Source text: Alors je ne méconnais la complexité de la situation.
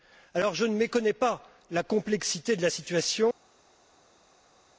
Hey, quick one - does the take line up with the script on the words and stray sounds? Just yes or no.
no